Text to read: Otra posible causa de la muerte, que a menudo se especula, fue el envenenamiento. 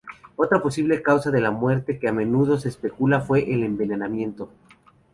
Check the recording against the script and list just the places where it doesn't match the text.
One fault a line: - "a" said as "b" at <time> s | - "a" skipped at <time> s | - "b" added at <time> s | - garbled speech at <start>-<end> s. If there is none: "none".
none